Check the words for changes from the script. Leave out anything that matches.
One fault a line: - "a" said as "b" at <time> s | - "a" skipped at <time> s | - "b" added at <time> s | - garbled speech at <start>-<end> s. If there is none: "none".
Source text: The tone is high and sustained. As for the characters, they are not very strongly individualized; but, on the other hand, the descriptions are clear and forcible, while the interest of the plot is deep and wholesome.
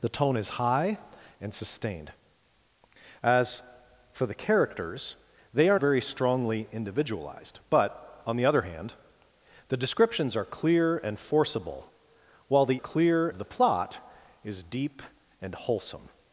- "not" skipped at 5.8 s
- "interest" said as "clear" at 12.8 s